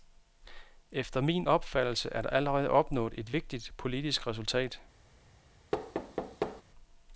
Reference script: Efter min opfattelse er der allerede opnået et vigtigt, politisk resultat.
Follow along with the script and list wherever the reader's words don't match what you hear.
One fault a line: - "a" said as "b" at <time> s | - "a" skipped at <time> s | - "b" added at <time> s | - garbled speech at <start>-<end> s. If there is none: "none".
none